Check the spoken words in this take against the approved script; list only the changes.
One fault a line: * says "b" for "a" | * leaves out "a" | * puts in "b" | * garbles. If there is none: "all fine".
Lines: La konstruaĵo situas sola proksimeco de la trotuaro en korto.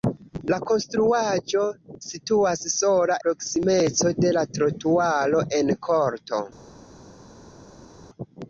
all fine